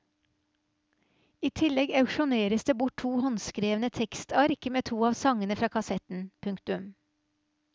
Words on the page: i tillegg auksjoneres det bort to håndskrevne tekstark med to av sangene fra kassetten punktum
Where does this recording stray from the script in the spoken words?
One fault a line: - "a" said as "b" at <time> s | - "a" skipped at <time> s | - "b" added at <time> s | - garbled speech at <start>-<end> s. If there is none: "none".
none